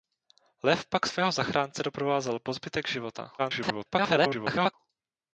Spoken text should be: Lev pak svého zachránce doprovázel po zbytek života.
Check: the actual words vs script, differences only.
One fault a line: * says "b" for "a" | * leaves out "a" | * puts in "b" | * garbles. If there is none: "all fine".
* garbles